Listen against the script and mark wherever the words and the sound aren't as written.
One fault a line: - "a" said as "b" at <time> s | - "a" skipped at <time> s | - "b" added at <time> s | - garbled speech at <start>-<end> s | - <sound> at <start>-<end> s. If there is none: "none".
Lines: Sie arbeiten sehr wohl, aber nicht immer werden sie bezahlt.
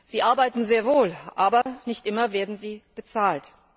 - dropout at 1.6-1.7 s